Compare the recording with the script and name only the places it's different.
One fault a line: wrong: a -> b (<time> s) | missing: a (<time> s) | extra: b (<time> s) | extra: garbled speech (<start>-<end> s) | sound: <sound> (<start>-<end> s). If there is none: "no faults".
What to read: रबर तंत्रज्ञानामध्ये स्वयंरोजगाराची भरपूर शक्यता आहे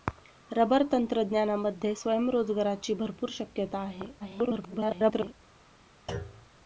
extra: garbled speech (4.2-5.3 s)
sound: thud (6.1-6.6 s)